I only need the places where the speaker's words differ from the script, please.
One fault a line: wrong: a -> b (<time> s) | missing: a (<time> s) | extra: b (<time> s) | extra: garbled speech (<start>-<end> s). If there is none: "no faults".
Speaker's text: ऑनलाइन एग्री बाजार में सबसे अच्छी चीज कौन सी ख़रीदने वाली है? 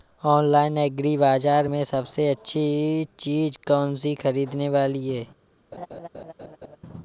no faults